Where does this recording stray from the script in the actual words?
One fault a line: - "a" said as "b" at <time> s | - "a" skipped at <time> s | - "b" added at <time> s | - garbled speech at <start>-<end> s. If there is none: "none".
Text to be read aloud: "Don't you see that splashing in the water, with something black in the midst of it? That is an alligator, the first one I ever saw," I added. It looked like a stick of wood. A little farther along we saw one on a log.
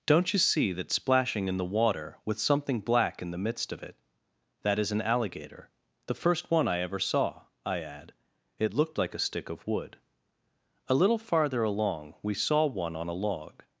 - "added" said as "add" at 7.8 s